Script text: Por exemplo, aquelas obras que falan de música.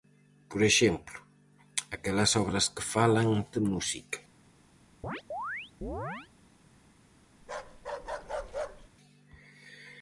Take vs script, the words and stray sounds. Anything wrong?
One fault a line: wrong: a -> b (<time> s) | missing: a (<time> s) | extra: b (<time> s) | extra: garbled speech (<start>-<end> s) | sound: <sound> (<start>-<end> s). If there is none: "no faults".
sound: chirp (5.0-6.3 s)
sound: bark (7.4-8.9 s)